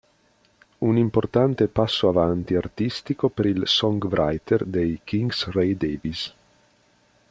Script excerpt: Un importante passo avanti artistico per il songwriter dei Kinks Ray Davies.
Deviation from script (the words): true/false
false